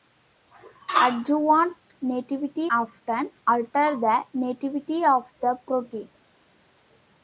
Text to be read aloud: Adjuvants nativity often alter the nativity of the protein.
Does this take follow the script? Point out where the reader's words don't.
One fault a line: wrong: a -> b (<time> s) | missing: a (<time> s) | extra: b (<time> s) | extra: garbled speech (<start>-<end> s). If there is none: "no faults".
no faults